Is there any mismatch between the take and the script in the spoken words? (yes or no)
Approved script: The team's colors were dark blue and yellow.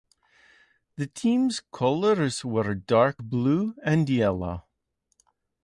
no